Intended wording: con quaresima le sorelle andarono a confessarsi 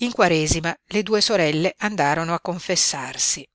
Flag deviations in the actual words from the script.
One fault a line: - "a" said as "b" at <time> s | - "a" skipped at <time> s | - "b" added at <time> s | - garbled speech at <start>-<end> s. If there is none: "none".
- "con" said as "in" at 0.0 s
- "due" added at 1.0 s